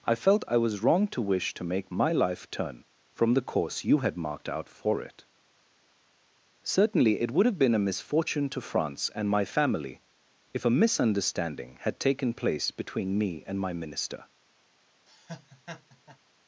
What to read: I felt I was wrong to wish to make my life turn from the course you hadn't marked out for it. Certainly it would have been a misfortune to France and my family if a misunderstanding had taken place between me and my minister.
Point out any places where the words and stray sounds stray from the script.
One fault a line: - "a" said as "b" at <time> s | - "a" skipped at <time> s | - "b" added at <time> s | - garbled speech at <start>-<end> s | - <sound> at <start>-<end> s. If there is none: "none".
- "hadn't" said as "had" at 4.0 s
- laugh at 15.1-16.2 s